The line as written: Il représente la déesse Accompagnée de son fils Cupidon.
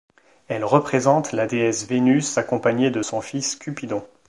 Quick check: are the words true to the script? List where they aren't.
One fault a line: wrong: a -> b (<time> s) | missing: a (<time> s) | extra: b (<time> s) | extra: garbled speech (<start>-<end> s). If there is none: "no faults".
wrong: Il -> Elle (0.5 s)
extra: Vénus (1.8 s)